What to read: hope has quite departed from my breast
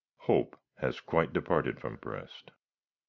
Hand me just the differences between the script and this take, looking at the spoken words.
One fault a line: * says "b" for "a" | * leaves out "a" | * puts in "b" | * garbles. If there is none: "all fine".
* leaves out "my"